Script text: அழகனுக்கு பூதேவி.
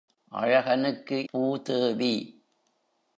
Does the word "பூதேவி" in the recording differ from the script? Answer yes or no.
no